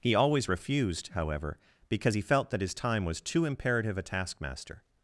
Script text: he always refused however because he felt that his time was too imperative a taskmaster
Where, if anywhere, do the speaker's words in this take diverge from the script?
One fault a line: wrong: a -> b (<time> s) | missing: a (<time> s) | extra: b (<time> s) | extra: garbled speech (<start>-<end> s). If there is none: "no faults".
no faults